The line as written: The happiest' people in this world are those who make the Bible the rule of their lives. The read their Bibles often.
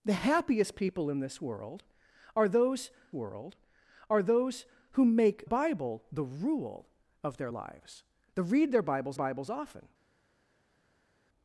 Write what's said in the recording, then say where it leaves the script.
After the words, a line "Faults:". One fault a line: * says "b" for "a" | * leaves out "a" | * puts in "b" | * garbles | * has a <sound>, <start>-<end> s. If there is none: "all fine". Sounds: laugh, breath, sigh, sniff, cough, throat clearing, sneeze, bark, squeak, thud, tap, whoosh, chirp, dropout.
The happiest' people in this world are those world are those who make Bible the rule of their lives. The read their Bibles Bibles often.
Faults:
* puts in "world are those"
* leaves out "the"
* puts in "Bibles"